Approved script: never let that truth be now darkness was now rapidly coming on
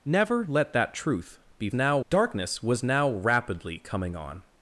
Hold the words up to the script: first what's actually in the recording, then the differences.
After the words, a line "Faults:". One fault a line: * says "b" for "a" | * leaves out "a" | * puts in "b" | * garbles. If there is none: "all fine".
never let that truth be now darkness was now rapidly coming on
Faults:
all fine